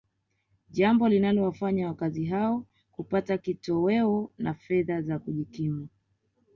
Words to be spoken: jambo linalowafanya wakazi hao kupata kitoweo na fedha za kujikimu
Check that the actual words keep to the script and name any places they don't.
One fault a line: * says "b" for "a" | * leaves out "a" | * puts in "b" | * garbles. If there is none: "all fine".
all fine